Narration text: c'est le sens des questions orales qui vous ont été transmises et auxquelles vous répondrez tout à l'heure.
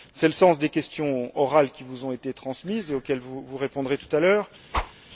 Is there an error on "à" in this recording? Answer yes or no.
no